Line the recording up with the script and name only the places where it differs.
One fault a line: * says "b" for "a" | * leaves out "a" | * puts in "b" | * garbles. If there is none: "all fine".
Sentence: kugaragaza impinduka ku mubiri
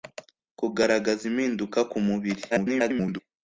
* garbles